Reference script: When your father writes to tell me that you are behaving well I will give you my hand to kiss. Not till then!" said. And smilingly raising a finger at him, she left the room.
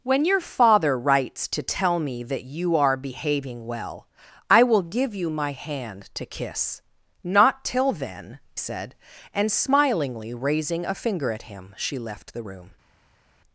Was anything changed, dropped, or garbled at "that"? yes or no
no